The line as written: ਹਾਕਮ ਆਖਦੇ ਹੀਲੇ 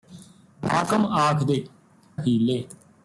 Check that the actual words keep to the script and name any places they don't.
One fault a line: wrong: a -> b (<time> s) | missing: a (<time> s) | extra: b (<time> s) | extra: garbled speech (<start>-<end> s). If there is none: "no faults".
no faults